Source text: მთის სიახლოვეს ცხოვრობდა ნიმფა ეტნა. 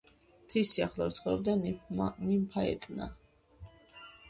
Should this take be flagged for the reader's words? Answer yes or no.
no